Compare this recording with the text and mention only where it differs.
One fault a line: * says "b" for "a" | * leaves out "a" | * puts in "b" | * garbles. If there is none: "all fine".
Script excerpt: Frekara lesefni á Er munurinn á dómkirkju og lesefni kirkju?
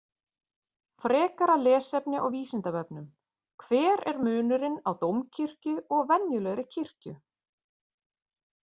* puts in "Vísindavefnum Hver"
* says "venjulegri" for "lesefni"